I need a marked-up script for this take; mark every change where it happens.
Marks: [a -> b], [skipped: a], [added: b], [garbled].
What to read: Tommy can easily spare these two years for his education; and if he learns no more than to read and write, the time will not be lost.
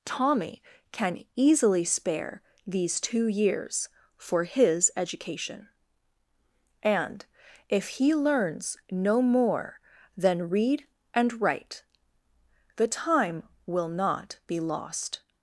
Tommy can easily spare these two years for his education; and if he learns no more than [skipped: to] read and write, the time will not be lost.